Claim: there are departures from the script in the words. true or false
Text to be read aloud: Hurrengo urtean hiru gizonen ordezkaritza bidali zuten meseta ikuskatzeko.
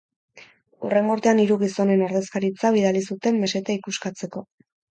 false